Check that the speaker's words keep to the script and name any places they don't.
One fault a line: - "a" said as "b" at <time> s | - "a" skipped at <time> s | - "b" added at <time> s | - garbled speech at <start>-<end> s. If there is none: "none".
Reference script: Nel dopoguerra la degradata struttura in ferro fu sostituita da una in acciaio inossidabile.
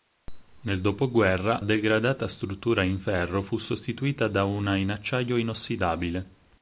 - "la" skipped at 1.6 s